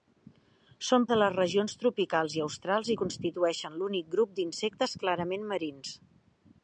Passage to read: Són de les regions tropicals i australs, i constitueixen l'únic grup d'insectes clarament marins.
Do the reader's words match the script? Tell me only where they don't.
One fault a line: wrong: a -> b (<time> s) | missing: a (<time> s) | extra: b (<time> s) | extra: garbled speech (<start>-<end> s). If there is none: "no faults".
no faults